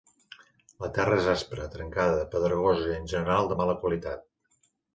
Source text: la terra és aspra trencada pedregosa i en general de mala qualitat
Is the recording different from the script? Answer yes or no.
no